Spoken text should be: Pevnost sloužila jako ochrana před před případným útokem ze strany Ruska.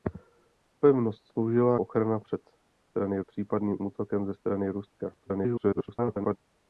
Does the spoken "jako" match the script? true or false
false